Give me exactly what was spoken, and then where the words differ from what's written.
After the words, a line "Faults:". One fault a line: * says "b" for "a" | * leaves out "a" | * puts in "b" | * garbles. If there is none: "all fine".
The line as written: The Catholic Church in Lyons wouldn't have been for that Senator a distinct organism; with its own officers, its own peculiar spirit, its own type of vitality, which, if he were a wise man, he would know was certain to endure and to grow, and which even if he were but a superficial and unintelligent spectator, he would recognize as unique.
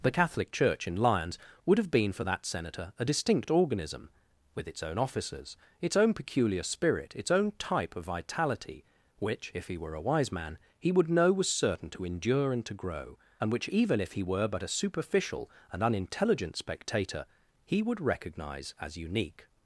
The Catholic Church in Lyons would have been for that Senator a distinct organism; with its own officers, its own peculiar spirit, its own type of vitality, which, if he were a wise man, he would know was certain to endure and to grow, and which even if he were but a superficial and unintelligent spectator, he would recognize as unique.
Faults:
* says "would" for "wouldn't"